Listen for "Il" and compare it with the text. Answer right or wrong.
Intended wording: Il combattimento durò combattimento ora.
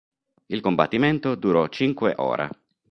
right